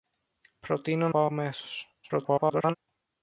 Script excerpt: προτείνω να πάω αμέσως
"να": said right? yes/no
no